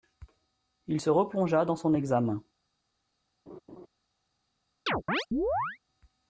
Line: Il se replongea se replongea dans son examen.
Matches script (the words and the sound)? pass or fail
fail